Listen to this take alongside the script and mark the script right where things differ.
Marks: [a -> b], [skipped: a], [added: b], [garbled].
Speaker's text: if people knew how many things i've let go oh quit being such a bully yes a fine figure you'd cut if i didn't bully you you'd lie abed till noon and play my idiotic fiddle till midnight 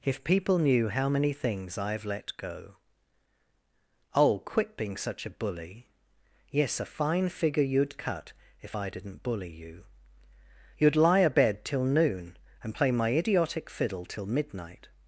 if people knew how many things i've let go oh quit being such a bully yes a fine figure you'd cut if i didn't bully you you'd lie abed till noon and play my idiotic fiddle till midnight